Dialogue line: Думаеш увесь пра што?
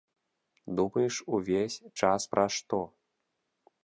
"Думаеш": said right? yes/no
yes